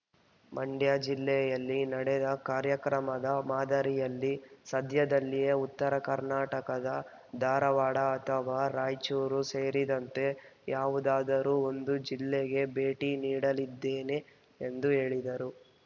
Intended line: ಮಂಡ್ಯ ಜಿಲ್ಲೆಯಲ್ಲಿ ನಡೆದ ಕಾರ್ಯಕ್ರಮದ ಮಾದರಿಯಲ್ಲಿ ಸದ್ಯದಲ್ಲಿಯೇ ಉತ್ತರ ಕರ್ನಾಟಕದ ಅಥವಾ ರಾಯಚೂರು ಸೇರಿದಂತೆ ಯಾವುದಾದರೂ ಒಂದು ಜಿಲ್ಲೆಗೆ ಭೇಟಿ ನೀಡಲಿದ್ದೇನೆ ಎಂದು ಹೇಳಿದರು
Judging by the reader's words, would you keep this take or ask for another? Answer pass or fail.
fail